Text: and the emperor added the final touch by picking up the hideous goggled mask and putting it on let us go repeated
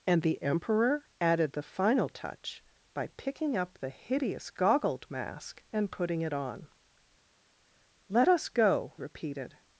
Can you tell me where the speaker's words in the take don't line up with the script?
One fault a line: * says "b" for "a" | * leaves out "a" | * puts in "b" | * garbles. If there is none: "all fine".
all fine